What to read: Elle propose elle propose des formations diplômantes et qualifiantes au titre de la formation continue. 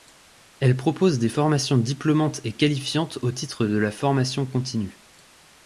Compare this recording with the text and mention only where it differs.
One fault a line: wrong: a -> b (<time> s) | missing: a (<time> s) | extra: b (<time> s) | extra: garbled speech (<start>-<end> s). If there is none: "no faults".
missing: elle propose (1.2 s)